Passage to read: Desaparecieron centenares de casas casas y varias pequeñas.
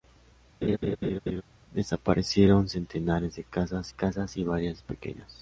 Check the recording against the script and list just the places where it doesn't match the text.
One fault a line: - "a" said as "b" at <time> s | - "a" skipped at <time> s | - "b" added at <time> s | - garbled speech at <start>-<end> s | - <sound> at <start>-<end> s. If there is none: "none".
- laugh at 0.6-1.4 s